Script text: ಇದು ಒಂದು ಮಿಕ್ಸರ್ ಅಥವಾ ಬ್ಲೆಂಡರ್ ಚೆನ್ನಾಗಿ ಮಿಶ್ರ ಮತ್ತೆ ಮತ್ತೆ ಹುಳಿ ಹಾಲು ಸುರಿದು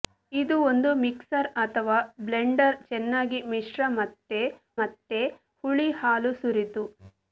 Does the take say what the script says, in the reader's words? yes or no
yes